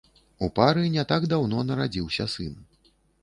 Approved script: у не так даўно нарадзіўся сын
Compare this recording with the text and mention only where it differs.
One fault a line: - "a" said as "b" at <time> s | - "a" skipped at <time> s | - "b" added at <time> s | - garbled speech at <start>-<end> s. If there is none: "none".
- "пары" added at 0.6 s